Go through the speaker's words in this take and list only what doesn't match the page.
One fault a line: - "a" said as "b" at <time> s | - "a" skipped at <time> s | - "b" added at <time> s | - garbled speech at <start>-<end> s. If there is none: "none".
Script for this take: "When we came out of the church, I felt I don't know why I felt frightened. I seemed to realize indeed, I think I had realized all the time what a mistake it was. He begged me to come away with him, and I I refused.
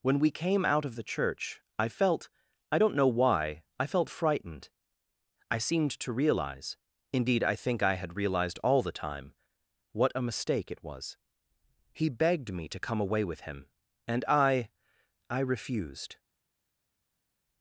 none